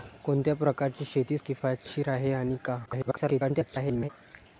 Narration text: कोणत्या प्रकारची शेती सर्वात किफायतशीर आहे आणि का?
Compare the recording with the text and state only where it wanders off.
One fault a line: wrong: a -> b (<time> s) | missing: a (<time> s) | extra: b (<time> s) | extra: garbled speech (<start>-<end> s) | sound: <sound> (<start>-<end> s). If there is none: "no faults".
missing: सर्वात (1.4 s)
extra: garbled speech (2.9-4.1 s)